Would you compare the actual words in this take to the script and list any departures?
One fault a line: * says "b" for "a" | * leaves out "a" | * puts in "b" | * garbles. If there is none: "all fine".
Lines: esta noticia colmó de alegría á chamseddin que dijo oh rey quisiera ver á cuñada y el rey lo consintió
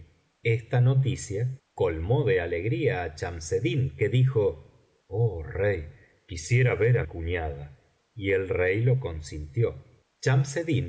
all fine